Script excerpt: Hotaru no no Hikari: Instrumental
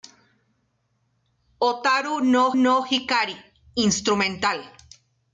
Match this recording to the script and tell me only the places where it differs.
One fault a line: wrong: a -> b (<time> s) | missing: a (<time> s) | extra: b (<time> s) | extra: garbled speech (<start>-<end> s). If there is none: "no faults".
no faults